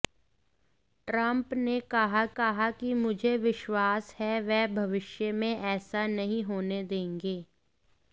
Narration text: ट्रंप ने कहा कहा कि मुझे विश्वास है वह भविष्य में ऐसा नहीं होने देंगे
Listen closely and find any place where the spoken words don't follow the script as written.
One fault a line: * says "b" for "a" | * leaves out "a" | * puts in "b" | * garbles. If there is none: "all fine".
all fine